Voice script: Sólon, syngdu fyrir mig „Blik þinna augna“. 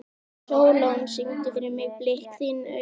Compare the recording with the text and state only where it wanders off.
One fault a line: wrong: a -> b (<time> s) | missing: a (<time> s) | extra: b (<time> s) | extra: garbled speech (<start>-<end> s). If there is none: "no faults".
no faults